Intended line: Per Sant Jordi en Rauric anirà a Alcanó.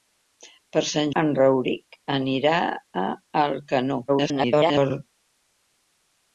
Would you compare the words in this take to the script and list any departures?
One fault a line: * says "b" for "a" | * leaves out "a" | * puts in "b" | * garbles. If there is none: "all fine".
* leaves out "Jordi"
* garbles